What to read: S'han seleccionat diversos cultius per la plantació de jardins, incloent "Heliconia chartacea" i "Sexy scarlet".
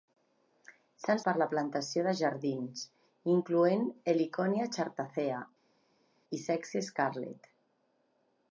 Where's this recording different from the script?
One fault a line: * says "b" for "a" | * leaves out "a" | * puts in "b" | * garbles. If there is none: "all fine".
* leaves out "seleccionat diversos cultius"